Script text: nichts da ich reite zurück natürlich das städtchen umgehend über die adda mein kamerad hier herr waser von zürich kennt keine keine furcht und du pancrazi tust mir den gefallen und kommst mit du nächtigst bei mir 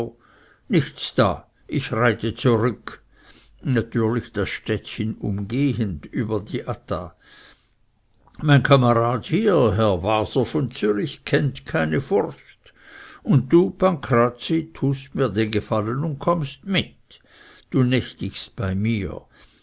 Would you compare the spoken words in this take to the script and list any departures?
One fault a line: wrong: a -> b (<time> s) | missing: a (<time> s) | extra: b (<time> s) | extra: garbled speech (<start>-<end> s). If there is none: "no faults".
missing: keine (12.0 s)